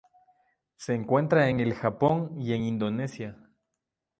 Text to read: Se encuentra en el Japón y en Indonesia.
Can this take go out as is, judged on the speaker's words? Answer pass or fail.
pass